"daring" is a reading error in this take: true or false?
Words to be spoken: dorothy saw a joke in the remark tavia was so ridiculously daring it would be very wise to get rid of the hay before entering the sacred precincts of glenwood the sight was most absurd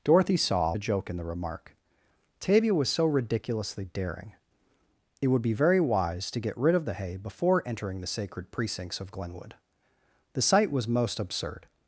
false